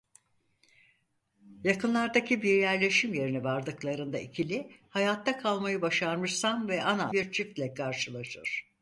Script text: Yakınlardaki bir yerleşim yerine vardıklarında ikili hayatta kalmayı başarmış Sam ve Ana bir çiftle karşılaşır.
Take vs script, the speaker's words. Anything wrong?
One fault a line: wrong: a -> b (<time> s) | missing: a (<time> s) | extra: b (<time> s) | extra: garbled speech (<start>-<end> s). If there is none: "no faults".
no faults